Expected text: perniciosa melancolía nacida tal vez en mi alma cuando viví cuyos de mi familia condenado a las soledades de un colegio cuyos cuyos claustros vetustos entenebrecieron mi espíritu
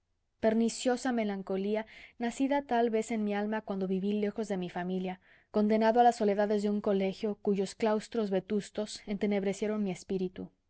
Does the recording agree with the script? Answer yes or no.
no